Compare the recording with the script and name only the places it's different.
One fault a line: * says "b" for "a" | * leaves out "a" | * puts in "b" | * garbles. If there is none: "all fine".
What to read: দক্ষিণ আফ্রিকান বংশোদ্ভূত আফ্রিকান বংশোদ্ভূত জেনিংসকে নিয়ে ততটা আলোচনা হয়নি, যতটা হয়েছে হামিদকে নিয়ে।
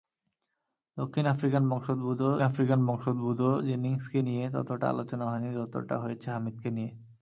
all fine